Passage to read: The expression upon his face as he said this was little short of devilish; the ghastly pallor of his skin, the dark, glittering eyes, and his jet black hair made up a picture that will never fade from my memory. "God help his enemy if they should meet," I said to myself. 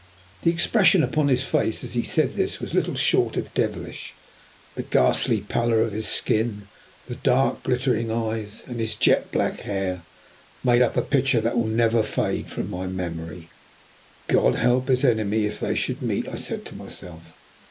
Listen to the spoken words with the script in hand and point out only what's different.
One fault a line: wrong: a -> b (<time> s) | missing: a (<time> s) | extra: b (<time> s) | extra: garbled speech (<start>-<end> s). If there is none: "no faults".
no faults